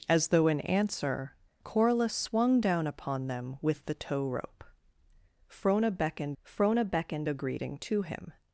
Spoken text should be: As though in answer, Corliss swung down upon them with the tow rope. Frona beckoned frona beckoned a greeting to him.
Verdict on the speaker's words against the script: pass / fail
pass